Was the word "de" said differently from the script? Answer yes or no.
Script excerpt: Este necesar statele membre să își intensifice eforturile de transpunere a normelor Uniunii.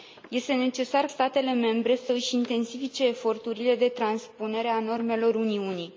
no